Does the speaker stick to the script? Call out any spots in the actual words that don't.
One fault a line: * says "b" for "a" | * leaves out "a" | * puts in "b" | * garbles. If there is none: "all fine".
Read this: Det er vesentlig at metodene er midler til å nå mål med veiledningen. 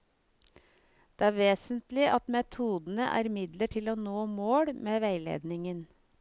all fine